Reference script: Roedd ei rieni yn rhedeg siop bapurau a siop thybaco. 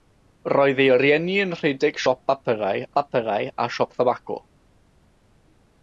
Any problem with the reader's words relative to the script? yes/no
yes